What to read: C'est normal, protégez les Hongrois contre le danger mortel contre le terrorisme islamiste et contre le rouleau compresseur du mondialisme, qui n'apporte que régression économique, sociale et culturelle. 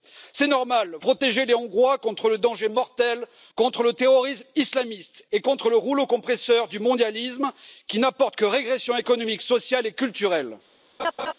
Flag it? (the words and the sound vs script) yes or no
yes